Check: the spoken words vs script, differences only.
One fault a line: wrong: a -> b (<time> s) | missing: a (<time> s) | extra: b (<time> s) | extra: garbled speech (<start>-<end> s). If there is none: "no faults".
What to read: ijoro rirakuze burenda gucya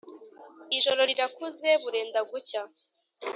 no faults